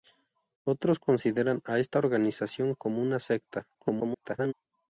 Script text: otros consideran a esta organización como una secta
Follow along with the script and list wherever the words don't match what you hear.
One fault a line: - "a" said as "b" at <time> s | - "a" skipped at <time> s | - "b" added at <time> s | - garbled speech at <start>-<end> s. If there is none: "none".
- garbled speech at 3.7-4.5 s